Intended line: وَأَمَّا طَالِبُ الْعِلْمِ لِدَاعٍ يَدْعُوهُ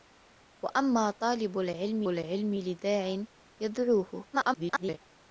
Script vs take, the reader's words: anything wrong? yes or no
yes